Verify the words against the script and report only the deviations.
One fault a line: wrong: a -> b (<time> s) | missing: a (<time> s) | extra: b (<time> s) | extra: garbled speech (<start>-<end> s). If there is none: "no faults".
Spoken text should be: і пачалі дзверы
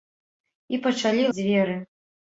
no faults